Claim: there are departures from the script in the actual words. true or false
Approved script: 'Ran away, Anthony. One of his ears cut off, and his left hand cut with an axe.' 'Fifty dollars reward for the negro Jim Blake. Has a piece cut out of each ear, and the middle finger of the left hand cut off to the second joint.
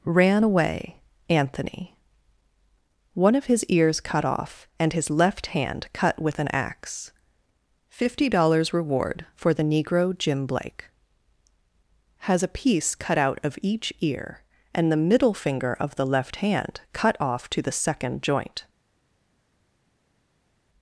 false